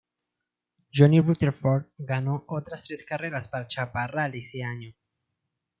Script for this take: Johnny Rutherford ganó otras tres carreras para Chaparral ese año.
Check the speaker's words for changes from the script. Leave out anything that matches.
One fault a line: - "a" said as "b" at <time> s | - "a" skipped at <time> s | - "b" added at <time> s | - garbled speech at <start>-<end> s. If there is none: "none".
none